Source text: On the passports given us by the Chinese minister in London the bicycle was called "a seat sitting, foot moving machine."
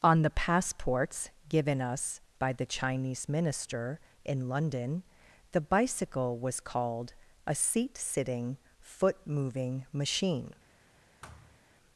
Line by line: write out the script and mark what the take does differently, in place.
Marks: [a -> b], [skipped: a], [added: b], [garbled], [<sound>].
On the passports given us by the Chinese minister in London the bicycle was called "a seat sitting, foot moving machine." [thud]